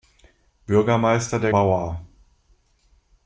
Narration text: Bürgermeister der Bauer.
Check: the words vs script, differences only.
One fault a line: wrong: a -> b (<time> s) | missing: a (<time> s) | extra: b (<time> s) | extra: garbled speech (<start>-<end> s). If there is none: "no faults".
no faults